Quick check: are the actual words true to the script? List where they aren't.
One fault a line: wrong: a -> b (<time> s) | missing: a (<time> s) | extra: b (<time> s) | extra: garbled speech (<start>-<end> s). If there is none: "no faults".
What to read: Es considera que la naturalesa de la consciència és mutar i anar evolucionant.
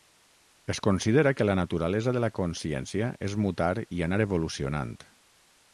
no faults